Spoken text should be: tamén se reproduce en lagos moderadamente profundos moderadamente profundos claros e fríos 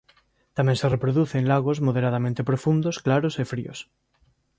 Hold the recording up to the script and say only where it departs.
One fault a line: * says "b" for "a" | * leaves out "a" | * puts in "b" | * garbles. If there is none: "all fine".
* leaves out "moderadamente profundos"